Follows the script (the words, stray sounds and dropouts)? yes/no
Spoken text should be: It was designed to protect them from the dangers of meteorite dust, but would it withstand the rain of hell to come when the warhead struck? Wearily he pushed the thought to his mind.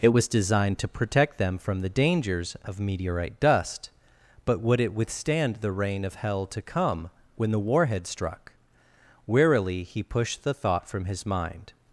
no